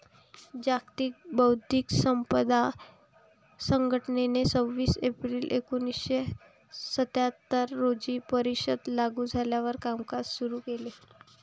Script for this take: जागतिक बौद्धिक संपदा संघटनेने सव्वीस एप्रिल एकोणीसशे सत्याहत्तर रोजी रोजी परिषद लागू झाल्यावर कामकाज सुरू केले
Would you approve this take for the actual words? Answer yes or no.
no